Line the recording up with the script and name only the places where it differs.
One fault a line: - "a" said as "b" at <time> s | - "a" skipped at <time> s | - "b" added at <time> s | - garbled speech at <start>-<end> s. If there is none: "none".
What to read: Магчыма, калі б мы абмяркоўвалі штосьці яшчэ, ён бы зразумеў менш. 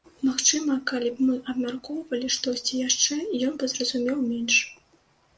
none